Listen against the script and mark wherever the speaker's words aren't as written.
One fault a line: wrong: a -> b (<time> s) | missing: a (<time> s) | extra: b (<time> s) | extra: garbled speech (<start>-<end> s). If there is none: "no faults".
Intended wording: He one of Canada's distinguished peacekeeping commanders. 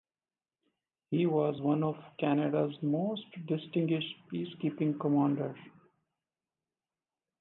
extra: was (1.3 s)
extra: most (2.8 s)